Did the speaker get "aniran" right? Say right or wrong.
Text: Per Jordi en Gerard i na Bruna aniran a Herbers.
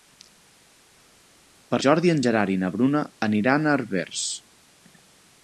right